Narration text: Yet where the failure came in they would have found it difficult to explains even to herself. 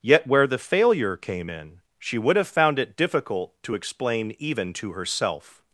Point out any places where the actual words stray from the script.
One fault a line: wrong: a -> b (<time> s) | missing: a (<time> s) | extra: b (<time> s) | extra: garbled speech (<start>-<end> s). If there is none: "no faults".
wrong: they -> she (2.0 s)
wrong: explains -> explain (3.7 s)